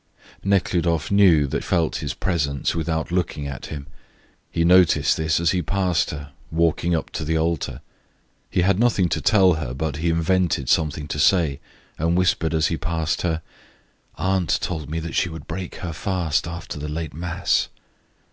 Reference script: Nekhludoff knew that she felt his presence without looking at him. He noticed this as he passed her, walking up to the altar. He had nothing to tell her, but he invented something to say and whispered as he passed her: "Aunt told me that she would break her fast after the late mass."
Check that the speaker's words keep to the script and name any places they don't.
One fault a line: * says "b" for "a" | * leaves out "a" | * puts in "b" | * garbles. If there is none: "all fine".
* leaves out "she"